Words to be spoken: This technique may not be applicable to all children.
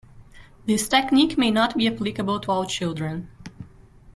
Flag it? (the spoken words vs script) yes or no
no